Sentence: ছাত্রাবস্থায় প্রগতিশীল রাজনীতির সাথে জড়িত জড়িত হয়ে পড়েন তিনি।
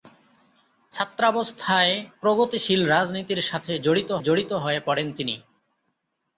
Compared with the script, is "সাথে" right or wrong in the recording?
right